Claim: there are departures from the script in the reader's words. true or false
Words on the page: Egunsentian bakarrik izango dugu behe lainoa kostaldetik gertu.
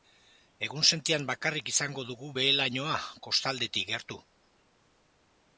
false